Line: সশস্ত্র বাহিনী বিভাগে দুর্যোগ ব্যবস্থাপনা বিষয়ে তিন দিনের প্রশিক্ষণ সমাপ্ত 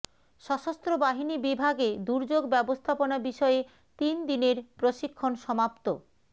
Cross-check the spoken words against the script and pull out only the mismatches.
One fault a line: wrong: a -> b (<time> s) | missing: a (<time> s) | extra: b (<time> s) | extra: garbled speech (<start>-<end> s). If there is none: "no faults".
no faults